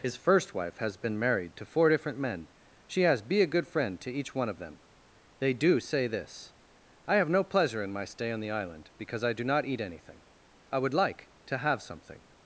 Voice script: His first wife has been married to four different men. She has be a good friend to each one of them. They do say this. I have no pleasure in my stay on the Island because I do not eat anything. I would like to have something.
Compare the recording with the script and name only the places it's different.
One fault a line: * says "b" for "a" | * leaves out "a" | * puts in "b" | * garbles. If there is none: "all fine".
all fine